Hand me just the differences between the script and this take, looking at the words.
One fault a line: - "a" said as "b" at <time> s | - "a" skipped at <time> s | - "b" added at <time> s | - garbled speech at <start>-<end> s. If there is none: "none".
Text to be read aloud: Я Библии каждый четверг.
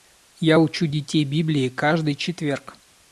- "учу детей" added at 0.6 s